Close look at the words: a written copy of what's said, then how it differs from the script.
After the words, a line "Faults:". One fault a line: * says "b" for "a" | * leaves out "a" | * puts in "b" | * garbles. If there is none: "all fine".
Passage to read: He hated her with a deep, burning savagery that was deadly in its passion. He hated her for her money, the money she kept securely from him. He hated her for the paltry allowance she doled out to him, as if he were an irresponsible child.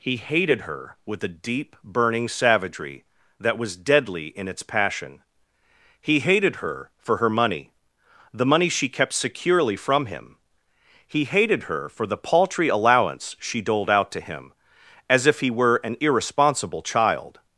He hated her with a deep, burning savagery that was deadly in its passion. He hated her for her money, the money she kept securely from him. He hated her for the paltry allowance she doled out to him, as if he were an irresponsible child.
Faults:
all fine